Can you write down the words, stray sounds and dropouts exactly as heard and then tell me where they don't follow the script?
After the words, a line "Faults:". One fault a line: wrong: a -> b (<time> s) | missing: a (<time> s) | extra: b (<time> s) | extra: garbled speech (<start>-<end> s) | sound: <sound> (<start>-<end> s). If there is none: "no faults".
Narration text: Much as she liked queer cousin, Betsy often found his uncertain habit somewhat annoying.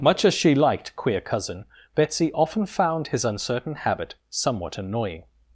Much as she liked queer cousin, Betsy often found his uncertain habit somewhat annoying.
Faults:
no faults